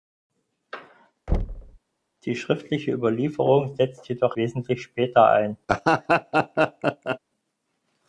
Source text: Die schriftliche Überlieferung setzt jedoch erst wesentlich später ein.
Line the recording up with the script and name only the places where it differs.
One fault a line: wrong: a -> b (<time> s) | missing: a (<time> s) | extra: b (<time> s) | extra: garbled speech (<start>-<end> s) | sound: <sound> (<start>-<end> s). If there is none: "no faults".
sound: thud (1.3-1.8 s)
missing: erst (4.4 s)
sound: laugh (5.7-7.2 s)